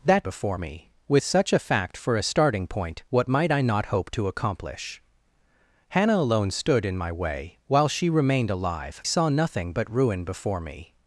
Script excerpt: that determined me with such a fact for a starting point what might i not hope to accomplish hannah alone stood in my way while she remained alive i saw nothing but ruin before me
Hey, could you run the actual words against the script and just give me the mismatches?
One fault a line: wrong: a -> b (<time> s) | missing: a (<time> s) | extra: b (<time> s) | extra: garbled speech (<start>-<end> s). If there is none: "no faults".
wrong: determined -> before (0.2 s)
missing: i (9.0 s)